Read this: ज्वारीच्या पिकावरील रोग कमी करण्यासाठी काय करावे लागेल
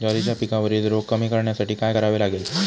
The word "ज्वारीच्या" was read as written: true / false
true